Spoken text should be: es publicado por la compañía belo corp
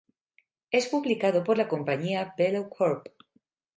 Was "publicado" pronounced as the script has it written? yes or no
yes